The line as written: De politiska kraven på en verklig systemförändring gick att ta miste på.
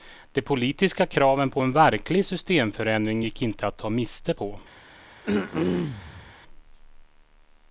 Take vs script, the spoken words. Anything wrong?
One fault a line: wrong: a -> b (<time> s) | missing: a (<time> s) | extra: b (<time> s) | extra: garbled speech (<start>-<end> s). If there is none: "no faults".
extra: inte (3.4 s)